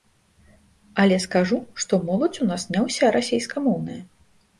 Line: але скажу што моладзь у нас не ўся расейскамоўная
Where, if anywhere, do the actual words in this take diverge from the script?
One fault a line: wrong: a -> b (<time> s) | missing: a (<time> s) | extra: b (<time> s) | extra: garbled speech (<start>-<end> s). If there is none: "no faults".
no faults